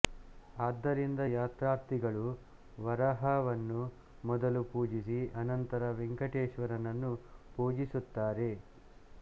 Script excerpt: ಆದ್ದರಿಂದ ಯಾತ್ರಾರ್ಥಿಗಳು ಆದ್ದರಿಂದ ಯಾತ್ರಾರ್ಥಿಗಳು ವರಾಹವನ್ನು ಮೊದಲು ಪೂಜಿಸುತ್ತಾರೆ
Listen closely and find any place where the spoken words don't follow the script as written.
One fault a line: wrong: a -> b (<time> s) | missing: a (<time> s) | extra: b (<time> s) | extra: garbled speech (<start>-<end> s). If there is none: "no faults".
wrong: ಆದ್ದರಿಂದ ಯಾತ್ರಾರ್ಥಿಗಳು ವರಾಹವನ್ನು ಮೊದಲು -> ವರಾಹವನ್ನು ಮೊದಲು ಪೂಜಿಸಿ ಅನಂತರ ವೆಂಕಟೇಶ್ವರನನ್ನು (2.8 s)